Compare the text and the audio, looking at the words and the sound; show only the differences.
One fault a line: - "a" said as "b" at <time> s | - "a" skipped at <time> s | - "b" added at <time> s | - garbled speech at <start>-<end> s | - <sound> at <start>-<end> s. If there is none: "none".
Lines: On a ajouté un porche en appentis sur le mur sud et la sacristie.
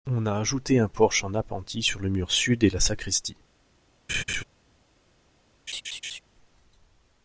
- laugh at 4.1-4.4 s
- laugh at 5.7-6.2 s